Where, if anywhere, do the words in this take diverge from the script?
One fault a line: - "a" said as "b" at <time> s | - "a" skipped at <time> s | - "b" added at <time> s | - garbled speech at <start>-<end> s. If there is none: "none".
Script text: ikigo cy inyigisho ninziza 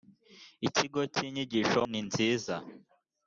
none